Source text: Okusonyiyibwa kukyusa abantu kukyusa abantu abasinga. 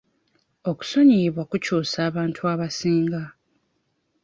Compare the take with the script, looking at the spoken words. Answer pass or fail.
fail